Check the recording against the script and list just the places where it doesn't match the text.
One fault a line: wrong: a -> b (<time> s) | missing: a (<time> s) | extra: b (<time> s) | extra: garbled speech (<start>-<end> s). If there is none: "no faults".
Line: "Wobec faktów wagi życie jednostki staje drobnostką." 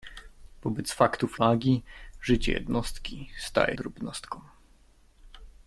no faults